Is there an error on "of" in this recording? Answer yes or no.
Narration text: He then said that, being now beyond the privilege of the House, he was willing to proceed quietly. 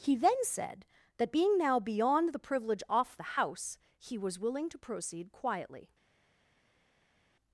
yes